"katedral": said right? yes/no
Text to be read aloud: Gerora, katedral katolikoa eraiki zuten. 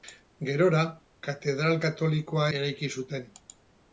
yes